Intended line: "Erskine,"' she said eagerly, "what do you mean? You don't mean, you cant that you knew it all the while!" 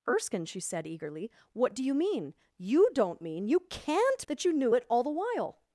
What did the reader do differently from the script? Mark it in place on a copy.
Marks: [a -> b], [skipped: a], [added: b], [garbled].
"Erskine,"' she said eagerly, "what do you mean? You don't mean, you cant that you knew it all the while!"